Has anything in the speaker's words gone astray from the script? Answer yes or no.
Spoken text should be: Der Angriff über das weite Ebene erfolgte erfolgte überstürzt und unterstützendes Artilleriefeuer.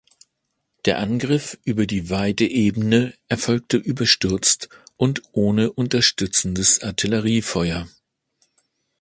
yes